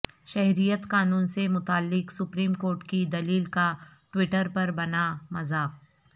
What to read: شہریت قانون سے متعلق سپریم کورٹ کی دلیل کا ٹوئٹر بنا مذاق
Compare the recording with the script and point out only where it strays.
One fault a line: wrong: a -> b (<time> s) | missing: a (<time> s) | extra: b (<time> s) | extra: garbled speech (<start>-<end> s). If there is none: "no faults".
extra: پر (4.5 s)